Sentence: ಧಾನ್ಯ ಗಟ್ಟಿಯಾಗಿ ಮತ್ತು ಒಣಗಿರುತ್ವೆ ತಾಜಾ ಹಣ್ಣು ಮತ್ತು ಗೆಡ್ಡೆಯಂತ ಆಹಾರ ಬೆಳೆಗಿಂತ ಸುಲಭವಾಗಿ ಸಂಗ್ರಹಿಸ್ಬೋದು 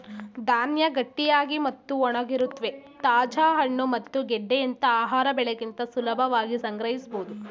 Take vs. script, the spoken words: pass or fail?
pass